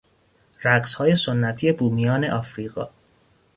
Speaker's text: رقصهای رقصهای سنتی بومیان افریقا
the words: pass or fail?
fail